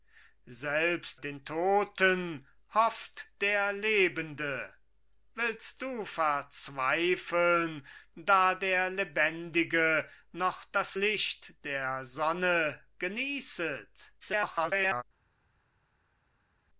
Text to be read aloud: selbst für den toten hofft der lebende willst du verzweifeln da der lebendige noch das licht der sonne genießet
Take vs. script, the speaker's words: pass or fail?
fail